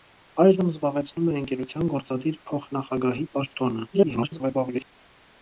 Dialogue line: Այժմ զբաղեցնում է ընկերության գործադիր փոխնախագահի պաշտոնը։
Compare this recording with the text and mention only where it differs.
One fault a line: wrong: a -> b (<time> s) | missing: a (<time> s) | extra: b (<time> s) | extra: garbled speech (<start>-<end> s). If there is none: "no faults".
extra: garbled speech (3.9-4.8 s)